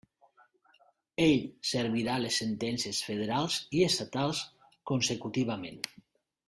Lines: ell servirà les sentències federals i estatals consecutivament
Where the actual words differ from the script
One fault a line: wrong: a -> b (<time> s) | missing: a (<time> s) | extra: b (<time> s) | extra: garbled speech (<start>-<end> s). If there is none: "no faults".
no faults